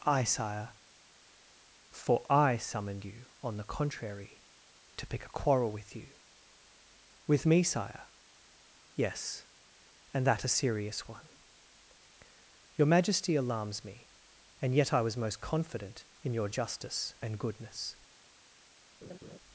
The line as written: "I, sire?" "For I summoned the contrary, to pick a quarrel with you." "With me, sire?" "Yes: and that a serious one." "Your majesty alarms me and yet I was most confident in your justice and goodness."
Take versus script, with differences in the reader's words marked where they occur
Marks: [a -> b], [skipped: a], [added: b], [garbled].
"I, sire?" "For I summoned [added: you on] the contrary, to pick a quarrel with you." "With me, sire?" "Yes: and that a serious one." "Your majesty alarms me and yet I was most confident in your justice and goodness."